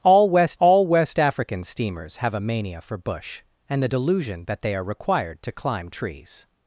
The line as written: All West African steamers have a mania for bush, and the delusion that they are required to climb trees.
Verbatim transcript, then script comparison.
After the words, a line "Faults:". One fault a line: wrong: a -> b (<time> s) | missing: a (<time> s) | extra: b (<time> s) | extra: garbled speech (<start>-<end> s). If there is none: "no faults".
All West all West African steamers have a mania for bush, and the delusion that they are required to climb trees.
Faults:
extra: all West (0.6 s)